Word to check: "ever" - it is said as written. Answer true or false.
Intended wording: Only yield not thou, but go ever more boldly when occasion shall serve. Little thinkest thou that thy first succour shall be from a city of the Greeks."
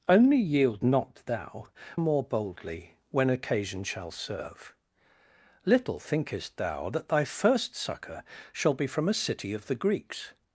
false